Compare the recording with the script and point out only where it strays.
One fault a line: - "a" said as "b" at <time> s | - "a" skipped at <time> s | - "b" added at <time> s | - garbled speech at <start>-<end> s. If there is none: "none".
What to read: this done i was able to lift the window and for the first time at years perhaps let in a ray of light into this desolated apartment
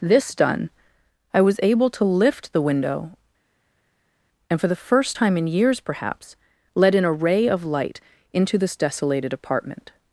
- "at" said as "in" at 5.4 s